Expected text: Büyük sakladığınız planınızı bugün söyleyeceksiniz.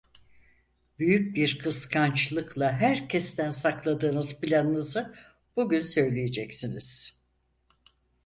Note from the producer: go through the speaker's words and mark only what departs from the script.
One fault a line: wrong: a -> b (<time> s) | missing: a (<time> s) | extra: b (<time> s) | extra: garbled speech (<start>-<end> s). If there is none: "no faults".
extra: bir kıskançlıkla herkesten (1.4 s)